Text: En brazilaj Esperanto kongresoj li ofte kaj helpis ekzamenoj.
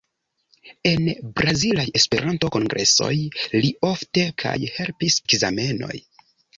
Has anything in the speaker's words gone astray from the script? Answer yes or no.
no